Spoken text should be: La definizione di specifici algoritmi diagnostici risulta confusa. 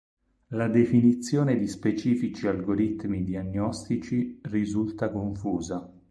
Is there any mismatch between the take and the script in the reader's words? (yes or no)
no